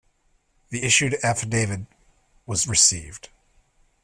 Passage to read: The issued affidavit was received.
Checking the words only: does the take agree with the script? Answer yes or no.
yes